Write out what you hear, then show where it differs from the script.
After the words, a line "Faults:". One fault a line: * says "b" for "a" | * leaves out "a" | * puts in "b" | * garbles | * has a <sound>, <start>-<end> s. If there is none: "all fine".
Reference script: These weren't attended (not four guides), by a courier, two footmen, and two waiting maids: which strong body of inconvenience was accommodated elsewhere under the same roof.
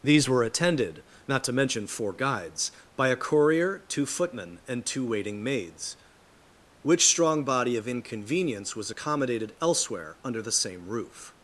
These were attended (not to mention four guides), by a courier, two footmen, and two waiting maids: which strong body of inconvenience was accommodated elsewhere under the same roof.
Faults:
* says "were" for "weren't"
* puts in "to mention"